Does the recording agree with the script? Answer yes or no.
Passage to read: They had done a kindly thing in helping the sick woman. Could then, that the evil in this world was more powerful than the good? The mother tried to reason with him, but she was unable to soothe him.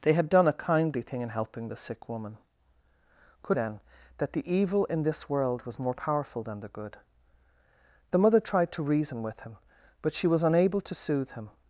yes